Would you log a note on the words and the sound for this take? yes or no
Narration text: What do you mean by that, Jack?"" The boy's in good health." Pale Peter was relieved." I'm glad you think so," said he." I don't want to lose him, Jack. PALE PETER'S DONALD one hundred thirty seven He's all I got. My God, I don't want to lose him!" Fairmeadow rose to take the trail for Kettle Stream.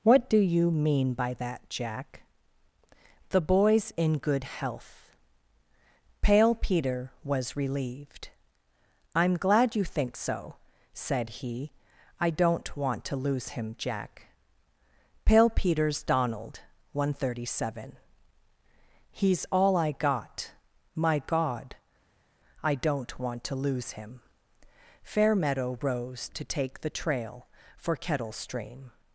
no